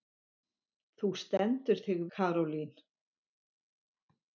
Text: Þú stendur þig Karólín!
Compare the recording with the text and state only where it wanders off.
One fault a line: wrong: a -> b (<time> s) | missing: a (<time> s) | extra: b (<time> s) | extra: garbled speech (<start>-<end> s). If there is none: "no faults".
no faults